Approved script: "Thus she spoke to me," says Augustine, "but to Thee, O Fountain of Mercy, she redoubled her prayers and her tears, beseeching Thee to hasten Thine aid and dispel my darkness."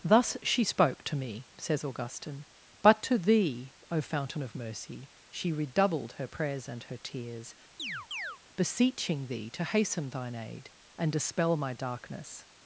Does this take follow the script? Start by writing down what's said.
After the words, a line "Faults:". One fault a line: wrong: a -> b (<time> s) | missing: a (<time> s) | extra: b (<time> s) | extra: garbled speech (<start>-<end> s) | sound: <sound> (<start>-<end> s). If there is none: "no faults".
"Thus she spoke to me," says Augustine, "but to Thee, O Fountain of Mercy, she redoubled her prayers and her tears, beseeching Thee to hasten Thine aid and dispel my darkness."
Faults:
sound: chirp (7.8-8.4 s)